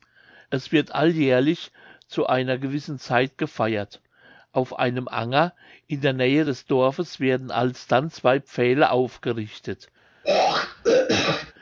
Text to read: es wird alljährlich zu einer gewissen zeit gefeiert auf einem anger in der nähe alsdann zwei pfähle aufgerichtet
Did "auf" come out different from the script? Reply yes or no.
no